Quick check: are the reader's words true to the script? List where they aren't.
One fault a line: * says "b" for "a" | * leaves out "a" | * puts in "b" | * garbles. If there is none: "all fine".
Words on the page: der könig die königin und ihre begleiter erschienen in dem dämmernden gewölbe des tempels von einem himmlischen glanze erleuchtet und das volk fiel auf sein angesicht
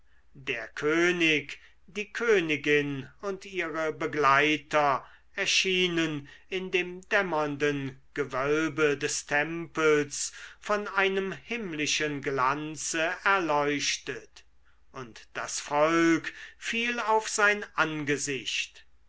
all fine